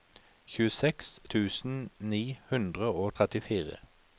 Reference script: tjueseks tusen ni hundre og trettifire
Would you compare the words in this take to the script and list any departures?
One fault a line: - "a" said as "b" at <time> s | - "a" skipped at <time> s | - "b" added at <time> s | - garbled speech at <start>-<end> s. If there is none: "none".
none